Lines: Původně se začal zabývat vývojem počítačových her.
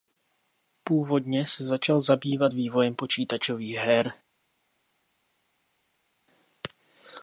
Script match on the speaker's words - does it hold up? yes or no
yes